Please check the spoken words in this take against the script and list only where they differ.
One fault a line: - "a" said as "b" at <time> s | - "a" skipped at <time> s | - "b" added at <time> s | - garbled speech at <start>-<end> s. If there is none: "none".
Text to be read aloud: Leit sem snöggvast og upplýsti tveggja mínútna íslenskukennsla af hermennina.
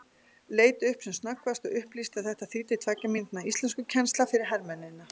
- "upp" added at 0.9 s
- "að þetta þýddi" added at 2.2 s
- "af" said as "fyrir" at 4.3 s